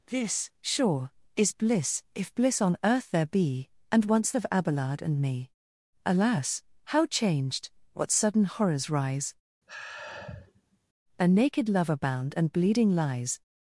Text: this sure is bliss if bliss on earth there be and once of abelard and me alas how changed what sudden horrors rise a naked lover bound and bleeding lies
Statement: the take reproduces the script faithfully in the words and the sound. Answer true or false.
false